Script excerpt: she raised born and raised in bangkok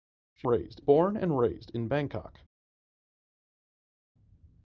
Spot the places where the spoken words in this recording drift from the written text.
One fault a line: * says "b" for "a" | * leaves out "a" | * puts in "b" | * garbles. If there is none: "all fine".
all fine